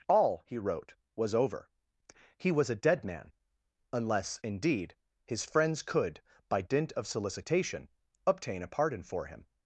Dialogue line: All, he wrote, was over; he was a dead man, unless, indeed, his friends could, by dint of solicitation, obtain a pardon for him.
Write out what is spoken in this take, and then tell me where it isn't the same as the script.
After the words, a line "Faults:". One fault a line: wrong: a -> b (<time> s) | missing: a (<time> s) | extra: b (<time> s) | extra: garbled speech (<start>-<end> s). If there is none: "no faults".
All, he wrote, was over; he was a dead man, unless, indeed, his friends could, by dint of solicitation, obtain a pardon for him.
Faults:
no faults